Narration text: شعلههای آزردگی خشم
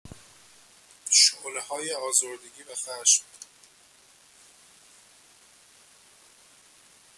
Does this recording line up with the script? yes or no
no